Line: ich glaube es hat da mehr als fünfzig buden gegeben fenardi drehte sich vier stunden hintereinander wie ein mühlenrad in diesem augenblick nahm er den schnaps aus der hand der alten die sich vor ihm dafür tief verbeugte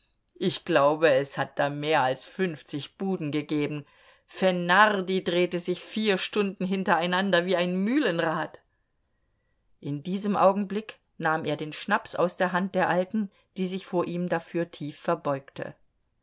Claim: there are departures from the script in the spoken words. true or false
false